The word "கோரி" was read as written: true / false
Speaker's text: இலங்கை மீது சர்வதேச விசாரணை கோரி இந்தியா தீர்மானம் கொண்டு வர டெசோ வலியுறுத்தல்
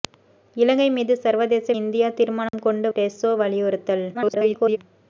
false